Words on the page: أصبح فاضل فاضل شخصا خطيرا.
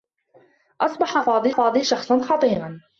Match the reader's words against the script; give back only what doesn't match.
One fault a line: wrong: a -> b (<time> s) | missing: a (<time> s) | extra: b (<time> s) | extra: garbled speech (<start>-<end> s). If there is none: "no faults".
no faults